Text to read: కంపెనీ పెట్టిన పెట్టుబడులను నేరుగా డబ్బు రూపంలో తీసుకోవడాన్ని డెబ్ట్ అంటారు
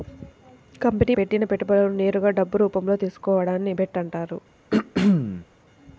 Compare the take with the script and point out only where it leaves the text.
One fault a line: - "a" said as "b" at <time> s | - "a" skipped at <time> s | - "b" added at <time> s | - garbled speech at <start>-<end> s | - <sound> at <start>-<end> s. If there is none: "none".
- throat clearing at 4.7-5.5 s